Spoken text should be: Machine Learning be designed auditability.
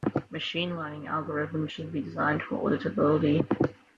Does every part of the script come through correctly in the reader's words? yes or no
no